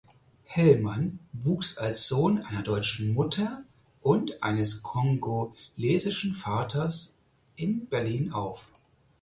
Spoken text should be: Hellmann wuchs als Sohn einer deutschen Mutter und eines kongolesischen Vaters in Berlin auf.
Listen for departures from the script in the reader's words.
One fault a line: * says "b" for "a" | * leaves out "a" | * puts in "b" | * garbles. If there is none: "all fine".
all fine